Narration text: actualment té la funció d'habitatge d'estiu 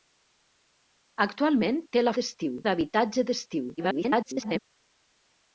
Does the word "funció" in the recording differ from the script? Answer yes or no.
yes